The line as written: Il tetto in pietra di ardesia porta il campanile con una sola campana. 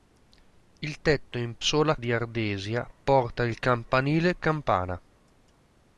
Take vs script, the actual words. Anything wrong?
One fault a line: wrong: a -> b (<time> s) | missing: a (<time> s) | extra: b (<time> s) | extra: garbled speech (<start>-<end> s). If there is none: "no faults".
wrong: pietra -> sola (1.6 s)
missing: con una sola (4.4 s)